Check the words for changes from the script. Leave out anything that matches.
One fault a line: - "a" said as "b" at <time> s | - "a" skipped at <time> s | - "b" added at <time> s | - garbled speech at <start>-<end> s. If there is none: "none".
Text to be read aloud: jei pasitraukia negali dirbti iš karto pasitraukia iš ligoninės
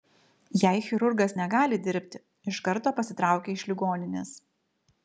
- "pasitraukia" said as "chirurgas" at 0.8 s